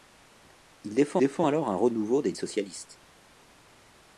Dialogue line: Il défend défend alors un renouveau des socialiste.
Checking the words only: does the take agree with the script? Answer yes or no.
yes